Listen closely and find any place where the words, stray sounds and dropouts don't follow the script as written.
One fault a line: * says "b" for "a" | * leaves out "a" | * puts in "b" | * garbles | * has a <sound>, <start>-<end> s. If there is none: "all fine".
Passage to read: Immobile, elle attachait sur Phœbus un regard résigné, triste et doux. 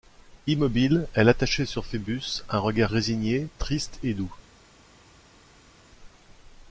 all fine